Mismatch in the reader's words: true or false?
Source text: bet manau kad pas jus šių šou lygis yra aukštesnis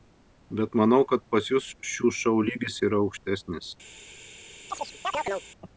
false